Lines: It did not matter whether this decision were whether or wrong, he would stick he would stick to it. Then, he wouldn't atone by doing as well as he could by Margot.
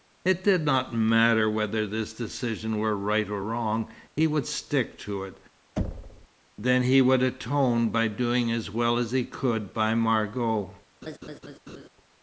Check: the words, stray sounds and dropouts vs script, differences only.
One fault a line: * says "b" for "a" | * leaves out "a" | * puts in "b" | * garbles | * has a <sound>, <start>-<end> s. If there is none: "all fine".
* says "right" for "whether"
* leaves out "he would stick"
* has a thud, 5.8-6.3 s
* says "would" for "wouldn't"
* has a laugh, 11.0-11.9 s